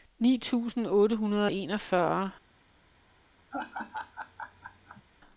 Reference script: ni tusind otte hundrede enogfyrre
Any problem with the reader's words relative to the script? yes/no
yes